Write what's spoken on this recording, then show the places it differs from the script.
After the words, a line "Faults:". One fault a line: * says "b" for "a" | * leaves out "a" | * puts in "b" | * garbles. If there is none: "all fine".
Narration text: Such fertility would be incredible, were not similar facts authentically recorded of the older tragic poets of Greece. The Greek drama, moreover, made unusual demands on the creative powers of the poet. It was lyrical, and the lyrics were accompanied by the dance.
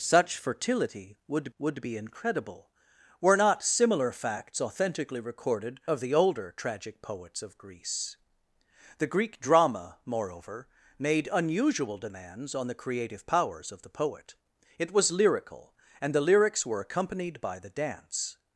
Such fertility would would be incredible, were not similar facts authentically recorded of the older tragic poets of Greece. The Greek drama, moreover, made unusual demands on the creative powers of the poet. It was lyrical, and the lyrics were accompanied by the dance.
Faults:
* puts in "would"